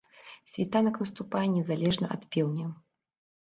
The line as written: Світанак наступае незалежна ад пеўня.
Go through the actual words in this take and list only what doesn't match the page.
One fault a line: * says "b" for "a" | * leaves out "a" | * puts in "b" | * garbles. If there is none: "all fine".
all fine